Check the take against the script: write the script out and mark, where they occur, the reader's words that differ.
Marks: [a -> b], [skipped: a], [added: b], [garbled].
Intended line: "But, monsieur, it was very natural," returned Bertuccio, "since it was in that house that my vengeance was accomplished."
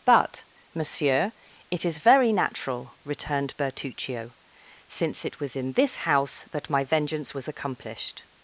"But, monsieur, it [was -> is] very natural," returned Bertuccio, "since it was in [that -> this] house that my vengeance was accomplished."